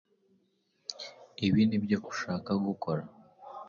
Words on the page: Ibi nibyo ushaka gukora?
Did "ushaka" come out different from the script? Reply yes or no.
no